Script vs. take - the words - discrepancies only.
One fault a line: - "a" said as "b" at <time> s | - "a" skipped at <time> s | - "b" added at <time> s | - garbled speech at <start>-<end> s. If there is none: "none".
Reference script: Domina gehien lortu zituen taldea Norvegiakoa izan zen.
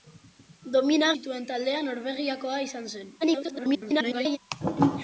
- "gehien lortu" skipped at 1.1 s
- garbled speech at 3.2-4.4 s